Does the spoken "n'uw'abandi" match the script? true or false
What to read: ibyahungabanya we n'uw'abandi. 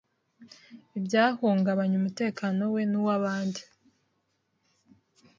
true